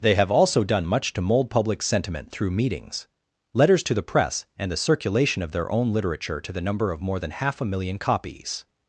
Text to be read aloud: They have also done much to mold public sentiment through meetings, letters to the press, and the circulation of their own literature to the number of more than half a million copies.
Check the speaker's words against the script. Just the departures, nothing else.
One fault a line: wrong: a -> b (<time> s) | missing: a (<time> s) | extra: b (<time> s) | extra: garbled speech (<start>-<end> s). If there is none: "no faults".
no faults